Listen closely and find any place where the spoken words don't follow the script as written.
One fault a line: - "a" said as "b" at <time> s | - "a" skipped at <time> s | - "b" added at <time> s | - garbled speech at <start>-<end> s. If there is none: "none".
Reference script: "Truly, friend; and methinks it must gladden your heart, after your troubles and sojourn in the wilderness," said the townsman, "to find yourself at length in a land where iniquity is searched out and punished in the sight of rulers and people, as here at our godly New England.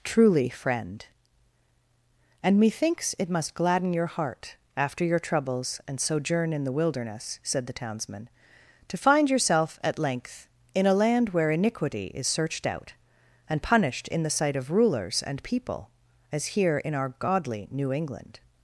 - "at" said as "in" at 16.8 s